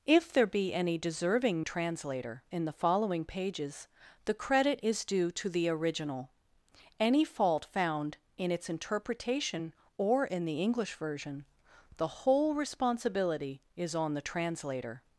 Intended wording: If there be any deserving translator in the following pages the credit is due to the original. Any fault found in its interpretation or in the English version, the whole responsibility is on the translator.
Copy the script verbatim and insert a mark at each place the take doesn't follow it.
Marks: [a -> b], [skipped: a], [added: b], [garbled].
If there be any deserving translator in the following pages the credit is due to the original. Any fault found in its interpretation or in the English version, the whole responsibility is on the translator.